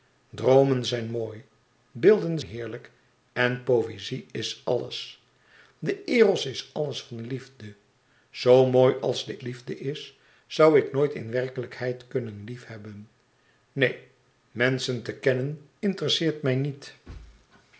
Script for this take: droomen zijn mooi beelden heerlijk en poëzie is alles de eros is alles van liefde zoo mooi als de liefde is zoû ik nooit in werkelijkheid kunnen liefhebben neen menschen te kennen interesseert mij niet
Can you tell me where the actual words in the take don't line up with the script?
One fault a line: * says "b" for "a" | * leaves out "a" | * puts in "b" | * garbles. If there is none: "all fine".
all fine